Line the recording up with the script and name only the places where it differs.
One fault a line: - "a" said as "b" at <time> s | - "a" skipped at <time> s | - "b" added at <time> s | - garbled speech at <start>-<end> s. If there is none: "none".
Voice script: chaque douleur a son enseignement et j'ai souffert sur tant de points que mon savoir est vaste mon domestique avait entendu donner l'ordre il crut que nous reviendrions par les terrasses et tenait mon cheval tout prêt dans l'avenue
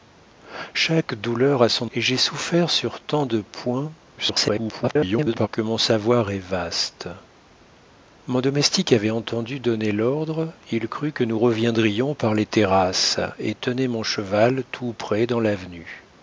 - "enseignement" skipped at 1.9 s
- garbled speech at 4.2-5.5 s